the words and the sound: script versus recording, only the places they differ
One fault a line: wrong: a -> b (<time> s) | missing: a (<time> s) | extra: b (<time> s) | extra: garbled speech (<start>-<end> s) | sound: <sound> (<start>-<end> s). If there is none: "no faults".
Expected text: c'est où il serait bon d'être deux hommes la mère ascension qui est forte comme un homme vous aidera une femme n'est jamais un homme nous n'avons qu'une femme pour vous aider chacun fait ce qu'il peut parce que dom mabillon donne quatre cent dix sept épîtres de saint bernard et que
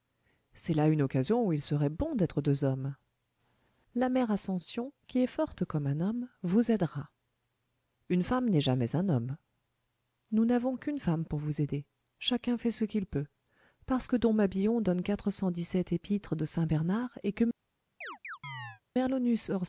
extra: là une occasion (0.7 s)
sound: chirp (18.0-18.8 s)